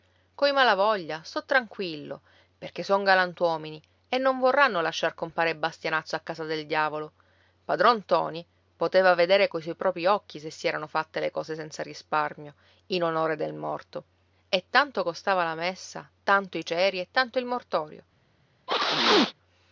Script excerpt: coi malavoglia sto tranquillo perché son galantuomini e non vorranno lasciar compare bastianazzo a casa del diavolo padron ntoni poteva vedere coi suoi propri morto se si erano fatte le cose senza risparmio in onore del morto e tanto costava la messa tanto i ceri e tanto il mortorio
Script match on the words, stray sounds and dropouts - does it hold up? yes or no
no